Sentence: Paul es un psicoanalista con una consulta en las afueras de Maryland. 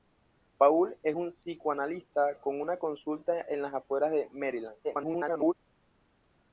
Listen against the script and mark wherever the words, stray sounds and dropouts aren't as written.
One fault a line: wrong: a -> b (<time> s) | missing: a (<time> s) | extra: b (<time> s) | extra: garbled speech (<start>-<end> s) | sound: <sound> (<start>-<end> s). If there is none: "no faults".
extra: garbled speech (4.8-5.5 s)